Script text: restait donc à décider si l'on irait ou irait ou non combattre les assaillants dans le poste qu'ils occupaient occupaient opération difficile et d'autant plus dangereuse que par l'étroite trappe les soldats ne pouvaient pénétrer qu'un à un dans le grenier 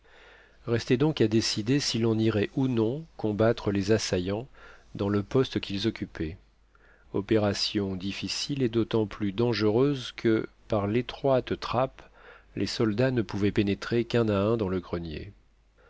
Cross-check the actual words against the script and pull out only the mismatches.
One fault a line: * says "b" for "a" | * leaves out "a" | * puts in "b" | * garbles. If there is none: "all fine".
* leaves out "irait ou"
* leaves out "occupaient"